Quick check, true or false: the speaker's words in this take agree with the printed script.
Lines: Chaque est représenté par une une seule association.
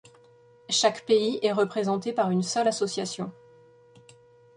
false